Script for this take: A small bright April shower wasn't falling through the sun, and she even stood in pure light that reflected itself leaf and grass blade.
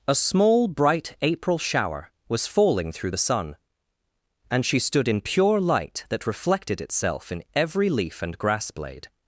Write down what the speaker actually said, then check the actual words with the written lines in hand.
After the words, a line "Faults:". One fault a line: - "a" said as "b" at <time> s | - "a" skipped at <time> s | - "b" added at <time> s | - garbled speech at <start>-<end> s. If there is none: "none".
A small bright April shower was falling through the sun, and she stood in pure light that reflected itself in every leaf and grass blade.
Faults:
- "wasn't" said as "was" at 2.3 s
- "even" skipped at 4.8 s
- "in every" added at 7.3 s